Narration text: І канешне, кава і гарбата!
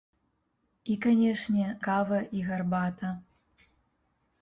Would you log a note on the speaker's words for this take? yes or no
no